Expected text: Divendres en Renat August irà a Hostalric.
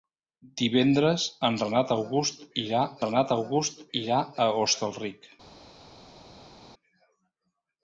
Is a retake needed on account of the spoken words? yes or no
yes